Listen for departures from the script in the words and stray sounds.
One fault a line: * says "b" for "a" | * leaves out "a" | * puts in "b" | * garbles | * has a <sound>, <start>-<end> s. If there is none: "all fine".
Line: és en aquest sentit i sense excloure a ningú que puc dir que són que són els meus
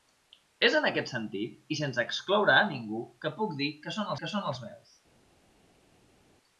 all fine